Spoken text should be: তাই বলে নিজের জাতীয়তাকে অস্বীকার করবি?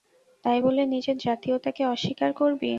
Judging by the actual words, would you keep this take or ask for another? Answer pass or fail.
pass